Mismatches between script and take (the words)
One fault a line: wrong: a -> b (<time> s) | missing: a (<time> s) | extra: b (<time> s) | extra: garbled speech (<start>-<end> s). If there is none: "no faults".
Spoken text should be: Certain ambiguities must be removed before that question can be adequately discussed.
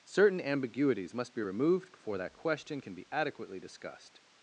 no faults